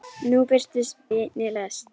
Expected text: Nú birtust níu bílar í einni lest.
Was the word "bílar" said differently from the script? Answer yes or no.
yes